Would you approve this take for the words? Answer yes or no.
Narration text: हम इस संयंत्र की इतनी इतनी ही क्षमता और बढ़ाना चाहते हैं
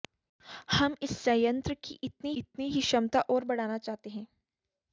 yes